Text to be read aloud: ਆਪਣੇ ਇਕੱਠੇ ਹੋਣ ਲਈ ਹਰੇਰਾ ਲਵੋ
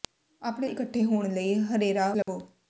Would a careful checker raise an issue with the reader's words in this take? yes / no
no